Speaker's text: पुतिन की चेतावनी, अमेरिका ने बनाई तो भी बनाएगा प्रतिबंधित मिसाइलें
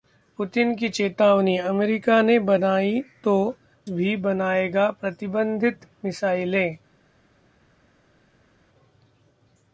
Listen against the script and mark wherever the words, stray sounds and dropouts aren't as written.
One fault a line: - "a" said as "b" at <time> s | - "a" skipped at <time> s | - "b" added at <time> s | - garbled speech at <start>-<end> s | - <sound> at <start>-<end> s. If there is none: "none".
none